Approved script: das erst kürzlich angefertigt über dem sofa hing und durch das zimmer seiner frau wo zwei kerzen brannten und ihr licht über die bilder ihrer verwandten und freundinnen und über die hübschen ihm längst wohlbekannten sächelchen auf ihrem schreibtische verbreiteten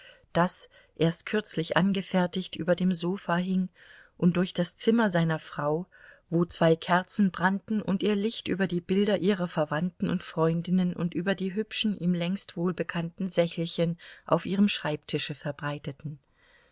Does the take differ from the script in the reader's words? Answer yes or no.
no